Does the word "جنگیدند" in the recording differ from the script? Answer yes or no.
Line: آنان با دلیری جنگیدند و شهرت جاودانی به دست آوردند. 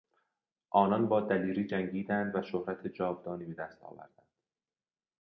no